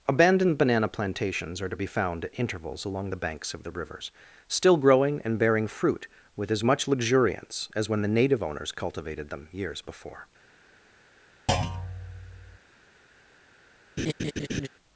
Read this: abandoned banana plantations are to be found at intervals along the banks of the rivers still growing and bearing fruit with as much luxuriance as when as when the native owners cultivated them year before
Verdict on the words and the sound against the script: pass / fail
fail